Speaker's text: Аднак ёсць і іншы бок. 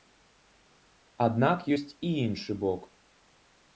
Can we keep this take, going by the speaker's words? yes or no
yes